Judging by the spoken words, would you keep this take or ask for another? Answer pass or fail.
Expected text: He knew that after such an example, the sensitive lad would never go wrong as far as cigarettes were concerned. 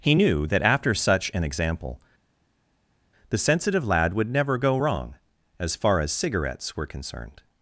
pass